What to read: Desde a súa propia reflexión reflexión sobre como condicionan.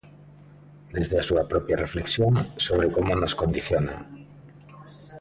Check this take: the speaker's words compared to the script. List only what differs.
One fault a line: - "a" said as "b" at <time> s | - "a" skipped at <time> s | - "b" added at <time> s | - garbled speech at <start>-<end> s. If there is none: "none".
- "reflexión" skipped at 2.3 s
- "nos" added at 3.2 s